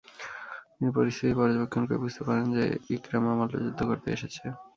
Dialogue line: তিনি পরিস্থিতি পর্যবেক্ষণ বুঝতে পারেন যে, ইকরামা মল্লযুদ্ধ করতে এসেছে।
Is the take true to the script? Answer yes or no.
no